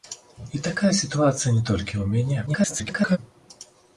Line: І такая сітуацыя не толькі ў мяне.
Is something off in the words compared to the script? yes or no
yes